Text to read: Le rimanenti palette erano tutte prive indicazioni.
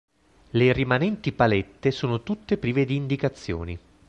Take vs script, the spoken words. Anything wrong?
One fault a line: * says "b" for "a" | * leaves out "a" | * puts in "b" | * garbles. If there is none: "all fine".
* says "sono" for "erano"
* puts in "di"